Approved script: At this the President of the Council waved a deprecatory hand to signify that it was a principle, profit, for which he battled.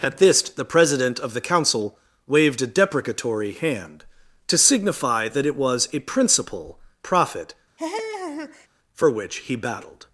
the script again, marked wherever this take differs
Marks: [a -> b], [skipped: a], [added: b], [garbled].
At this the President of the Council waved a deprecatory hand to signify that it was a principle, profit, for which he battled.